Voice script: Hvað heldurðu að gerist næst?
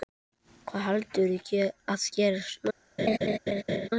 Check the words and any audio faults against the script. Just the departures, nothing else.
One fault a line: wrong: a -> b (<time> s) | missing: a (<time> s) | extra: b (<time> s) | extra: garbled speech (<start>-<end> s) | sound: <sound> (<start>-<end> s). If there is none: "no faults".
sound: laugh (3.0-3.9 s)